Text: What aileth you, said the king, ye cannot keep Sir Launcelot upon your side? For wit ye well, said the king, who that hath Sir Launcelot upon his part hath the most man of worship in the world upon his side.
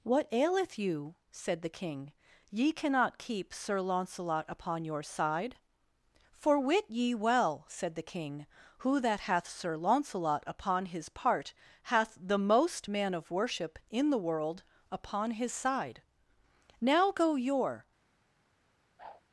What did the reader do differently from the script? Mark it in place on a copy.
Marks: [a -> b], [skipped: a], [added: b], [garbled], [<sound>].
What aileth you, said the king, ye cannot keep Sir Launcelot upon your side? For wit ye well, said the king, who that hath Sir Launcelot upon his part hath the most man of worship in the world upon his side. [added: Now go your] [whoosh]